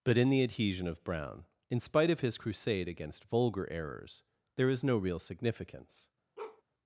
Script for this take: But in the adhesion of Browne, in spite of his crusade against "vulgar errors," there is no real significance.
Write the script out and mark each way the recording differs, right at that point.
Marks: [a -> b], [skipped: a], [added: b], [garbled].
But in the adhesion of Browne, in spite of his crusade against "vulgar errors," there is no real significance.